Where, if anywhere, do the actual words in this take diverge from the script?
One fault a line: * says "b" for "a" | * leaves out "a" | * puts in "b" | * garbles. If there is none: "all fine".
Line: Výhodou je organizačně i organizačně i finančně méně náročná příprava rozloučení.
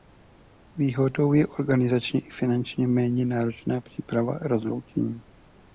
* leaves out "organizačně i"